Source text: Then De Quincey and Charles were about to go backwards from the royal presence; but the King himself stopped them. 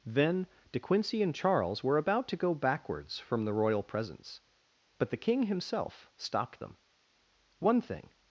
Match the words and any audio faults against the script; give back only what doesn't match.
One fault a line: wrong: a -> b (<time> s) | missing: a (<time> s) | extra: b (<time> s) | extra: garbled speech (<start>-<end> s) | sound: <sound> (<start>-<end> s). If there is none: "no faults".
extra: One thing (7.6 s)